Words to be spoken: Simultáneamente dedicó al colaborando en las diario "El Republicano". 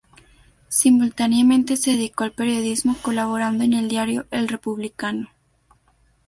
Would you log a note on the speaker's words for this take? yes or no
yes